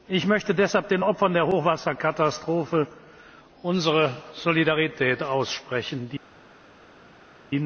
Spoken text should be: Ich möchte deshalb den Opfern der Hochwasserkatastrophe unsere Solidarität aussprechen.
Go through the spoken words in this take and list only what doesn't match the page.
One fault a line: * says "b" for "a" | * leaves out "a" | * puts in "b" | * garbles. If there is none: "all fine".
all fine